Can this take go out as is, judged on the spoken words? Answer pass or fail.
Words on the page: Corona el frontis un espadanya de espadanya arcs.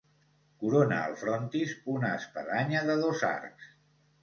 fail